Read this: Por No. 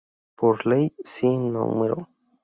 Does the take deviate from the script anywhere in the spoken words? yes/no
yes